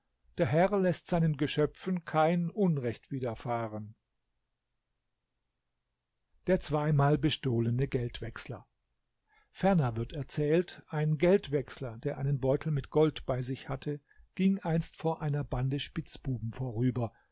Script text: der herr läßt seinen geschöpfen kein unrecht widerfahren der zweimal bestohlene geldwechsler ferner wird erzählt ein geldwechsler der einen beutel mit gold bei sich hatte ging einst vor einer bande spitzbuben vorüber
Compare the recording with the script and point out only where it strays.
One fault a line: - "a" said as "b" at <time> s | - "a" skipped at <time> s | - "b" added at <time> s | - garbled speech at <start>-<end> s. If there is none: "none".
none